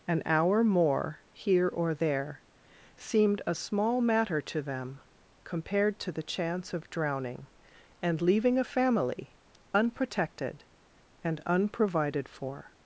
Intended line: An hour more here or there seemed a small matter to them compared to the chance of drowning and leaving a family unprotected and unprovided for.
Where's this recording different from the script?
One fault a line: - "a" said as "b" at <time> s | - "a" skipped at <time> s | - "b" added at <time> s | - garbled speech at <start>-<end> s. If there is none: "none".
none